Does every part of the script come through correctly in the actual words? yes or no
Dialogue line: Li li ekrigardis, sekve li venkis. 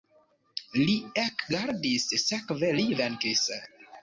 no